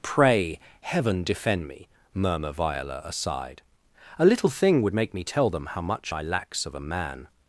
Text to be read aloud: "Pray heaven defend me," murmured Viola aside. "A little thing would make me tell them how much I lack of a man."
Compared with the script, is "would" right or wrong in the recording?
right